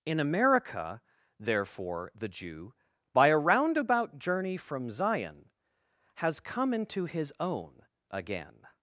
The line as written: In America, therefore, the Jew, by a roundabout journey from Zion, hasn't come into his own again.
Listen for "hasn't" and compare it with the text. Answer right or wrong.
wrong